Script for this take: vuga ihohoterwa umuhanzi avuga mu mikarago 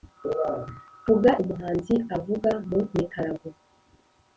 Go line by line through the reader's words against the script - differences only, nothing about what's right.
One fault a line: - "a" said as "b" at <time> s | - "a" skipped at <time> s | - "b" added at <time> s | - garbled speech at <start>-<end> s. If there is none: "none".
- "ihohoterwa" skipped at 1.3 s